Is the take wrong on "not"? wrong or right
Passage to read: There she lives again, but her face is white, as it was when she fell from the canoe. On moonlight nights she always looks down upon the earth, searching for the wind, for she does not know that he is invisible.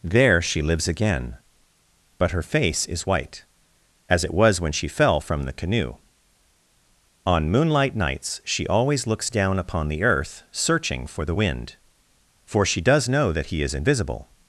wrong